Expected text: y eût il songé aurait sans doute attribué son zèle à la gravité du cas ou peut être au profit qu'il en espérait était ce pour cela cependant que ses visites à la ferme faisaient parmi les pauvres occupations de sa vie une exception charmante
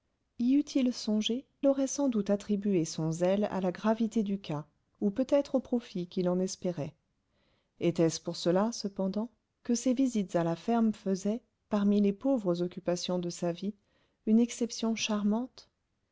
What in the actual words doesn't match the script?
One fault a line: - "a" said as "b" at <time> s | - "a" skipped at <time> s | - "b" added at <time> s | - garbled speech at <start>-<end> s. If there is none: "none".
none